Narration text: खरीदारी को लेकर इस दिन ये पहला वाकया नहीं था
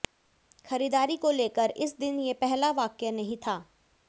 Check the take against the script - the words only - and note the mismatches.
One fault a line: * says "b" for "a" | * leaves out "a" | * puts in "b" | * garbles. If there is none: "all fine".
all fine